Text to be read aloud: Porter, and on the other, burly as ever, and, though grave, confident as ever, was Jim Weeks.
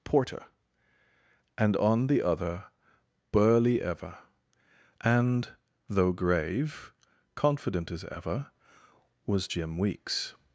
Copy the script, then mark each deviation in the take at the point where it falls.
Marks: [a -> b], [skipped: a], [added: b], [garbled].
Porter, and on the other, burly [skipped: as] ever, and, though grave, confident as ever, was Jim Weeks.